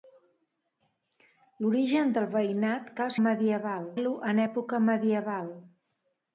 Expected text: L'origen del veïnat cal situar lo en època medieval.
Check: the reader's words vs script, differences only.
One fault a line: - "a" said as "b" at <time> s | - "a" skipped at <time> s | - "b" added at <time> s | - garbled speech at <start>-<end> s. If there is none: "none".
- "situar" said as "medieval" at 3.2 s